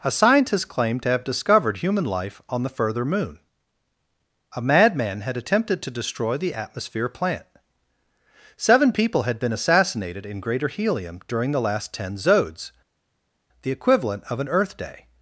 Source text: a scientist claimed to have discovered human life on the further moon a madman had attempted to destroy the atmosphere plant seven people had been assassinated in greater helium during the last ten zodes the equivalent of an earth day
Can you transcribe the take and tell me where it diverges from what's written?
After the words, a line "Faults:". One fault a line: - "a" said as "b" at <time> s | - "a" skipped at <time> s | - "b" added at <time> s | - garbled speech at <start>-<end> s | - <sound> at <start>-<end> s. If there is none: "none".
a scientist claimed to have discovered human life on the further moon a madman had attempted to destroy the atmosphere plant seven people had been assassinated in greater helium during the last ten zodes the equivalent of an earth day
Faults:
none